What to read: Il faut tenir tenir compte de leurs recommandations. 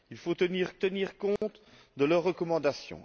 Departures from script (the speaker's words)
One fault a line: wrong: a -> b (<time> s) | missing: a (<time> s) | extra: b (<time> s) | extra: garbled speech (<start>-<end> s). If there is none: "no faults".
no faults